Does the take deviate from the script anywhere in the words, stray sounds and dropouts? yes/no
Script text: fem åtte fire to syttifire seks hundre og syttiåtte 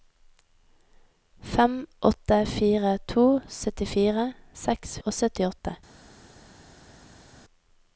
yes